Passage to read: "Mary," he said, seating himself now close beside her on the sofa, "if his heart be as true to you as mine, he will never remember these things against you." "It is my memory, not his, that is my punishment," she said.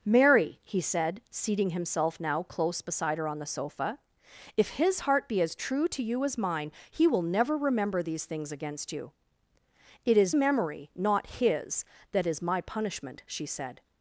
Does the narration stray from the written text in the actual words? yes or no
yes